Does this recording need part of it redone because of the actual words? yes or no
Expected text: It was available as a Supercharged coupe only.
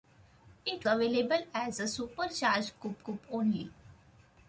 yes